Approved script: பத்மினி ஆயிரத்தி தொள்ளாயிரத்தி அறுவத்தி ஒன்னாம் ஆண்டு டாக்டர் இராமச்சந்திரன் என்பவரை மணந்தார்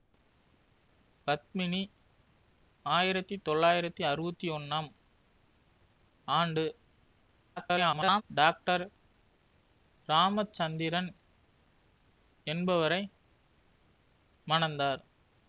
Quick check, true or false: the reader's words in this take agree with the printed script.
false